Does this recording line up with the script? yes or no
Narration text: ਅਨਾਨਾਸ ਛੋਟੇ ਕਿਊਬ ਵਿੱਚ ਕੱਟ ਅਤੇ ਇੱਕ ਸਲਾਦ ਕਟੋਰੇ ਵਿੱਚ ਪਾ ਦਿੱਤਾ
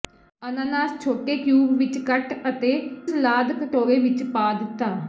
no